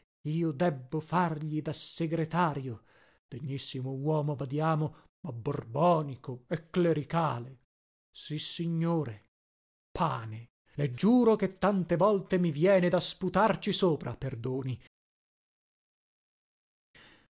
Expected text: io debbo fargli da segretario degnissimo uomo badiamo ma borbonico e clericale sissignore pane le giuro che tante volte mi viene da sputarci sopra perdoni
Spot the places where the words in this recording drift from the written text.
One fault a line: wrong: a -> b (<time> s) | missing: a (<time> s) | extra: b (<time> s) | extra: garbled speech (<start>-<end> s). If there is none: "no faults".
no faults